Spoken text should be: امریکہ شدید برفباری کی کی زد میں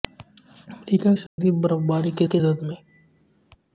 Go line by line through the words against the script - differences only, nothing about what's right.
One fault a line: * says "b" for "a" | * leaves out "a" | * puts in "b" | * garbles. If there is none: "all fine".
all fine